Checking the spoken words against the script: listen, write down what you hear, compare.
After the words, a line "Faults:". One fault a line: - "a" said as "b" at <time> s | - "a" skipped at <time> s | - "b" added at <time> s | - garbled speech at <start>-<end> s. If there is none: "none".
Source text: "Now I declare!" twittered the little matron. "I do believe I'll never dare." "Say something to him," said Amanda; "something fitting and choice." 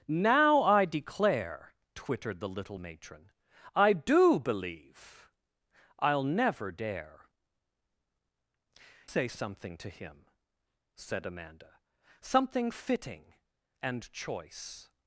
"Now I declare!" twittered the little matron. "I do believe I'll never dare." "Say something to him," said Amanda; "something fitting and choice."
Faults:
none